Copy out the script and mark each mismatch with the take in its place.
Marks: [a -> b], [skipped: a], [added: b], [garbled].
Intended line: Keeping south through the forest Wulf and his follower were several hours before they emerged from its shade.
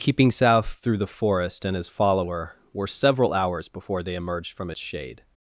Keeping south through the forest [skipped: Wulf] and his follower were several hours before they emerged from its shade.